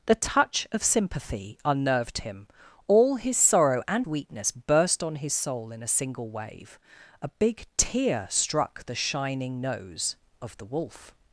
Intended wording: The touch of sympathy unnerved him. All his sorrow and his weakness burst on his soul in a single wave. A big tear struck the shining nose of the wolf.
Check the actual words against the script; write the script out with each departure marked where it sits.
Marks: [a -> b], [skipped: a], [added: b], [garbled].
The touch of sympathy unnerved him. All his sorrow and [skipped: his] weakness burst on his soul in a single wave. A big tear struck the shining nose of the wolf.